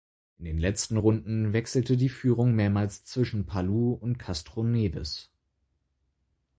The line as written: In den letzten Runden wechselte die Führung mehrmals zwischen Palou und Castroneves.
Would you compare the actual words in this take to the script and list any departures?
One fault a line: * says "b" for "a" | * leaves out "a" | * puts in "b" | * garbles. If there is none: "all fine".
all fine